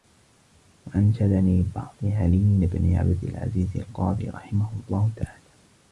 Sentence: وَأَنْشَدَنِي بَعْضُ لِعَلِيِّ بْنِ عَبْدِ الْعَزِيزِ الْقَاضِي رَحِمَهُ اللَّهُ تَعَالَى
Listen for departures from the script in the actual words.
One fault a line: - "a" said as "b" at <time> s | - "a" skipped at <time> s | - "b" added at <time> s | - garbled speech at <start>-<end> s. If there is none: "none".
none